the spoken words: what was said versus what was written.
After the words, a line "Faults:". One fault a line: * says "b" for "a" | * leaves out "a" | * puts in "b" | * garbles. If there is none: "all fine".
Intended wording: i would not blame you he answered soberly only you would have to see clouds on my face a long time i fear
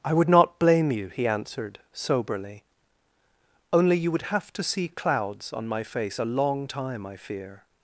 i would not blame you he answered soberly only you would have to see clouds on my face a long time i fear
Faults:
all fine